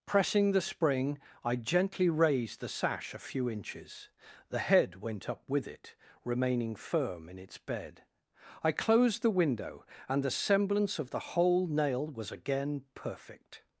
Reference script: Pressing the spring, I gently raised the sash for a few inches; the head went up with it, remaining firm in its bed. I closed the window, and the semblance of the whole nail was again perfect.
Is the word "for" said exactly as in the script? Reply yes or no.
no